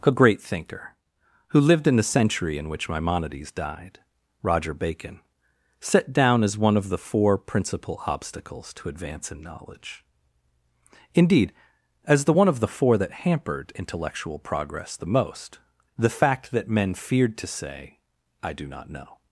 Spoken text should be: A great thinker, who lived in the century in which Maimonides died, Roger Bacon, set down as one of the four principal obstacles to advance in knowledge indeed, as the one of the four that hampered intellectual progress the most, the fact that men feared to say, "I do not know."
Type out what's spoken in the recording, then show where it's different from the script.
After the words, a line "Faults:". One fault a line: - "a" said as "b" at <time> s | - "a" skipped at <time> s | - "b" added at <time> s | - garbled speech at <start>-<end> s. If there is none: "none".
A great thinker, who lived in the century in which Maimonides died, Roger Bacon, set down as one of the four principal obstacles to advance in knowledge indeed, as the one of the four that hampered intellectual progress the most, the fact that men feared to say, "I do not know."
Faults:
none